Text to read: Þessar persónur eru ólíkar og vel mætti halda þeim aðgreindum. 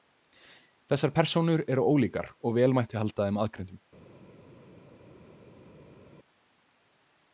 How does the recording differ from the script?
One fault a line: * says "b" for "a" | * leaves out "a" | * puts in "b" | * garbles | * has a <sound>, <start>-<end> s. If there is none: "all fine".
all fine